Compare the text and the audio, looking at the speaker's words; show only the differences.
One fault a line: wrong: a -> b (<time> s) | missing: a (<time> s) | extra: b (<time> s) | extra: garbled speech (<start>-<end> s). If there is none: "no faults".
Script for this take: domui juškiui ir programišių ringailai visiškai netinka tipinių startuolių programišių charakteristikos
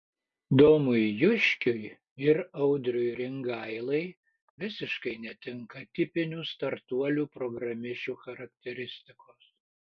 wrong: programišių -> audriui (2.7 s)